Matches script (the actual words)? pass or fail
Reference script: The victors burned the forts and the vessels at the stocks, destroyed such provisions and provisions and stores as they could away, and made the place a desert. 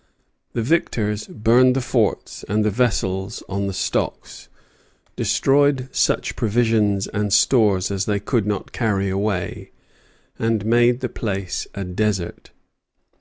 fail